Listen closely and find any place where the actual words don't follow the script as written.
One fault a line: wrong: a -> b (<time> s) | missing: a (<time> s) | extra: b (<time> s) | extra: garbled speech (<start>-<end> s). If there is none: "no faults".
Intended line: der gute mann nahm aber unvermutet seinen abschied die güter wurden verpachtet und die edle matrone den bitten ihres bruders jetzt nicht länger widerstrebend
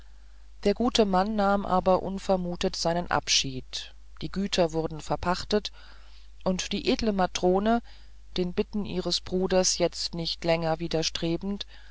no faults